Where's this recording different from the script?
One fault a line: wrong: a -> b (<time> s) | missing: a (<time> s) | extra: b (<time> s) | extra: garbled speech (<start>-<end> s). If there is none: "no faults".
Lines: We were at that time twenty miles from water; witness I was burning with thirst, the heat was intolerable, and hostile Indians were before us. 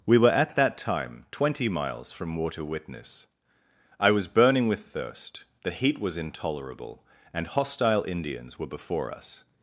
no faults